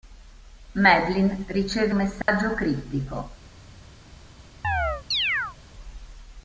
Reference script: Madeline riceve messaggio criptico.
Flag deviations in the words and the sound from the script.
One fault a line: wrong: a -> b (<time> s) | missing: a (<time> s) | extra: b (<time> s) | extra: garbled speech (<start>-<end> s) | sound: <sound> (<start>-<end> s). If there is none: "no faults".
sound: dropout (2.2-2.3 s)
sound: chirp (4.6-5.6 s)